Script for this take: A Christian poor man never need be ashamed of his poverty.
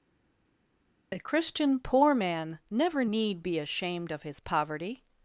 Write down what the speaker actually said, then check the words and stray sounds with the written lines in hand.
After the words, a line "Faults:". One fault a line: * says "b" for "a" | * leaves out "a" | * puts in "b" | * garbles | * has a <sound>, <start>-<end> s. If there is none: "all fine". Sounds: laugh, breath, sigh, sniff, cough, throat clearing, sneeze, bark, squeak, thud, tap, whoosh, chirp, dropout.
A Christian poor man never need be ashamed of his poverty.
Faults:
all fine